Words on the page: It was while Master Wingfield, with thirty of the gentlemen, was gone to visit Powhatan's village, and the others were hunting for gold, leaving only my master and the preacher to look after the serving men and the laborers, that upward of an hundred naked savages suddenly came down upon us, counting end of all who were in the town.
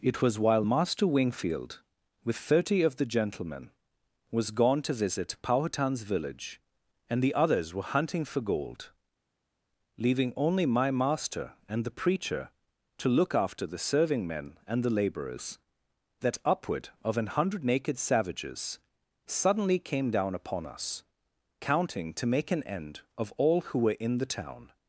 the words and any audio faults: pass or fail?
fail